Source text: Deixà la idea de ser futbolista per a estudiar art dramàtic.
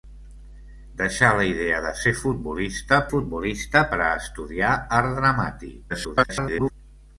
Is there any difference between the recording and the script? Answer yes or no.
yes